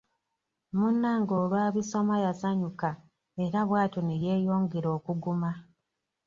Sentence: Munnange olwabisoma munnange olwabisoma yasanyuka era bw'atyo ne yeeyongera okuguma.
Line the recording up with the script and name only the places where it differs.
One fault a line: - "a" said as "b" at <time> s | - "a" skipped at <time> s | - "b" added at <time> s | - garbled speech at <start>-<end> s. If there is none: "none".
- "munnange olwabisoma" skipped at 2.2 s